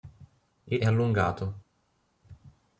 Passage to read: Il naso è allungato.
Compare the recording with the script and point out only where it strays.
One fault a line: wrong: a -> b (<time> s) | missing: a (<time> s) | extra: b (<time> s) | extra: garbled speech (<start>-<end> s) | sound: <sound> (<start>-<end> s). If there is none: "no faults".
missing: naso (0.8 s)